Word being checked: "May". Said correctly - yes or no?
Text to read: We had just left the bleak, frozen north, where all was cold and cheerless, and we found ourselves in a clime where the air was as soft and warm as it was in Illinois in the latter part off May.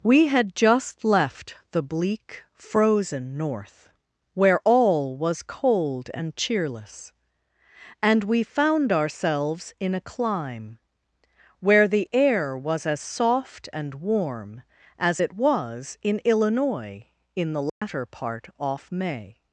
yes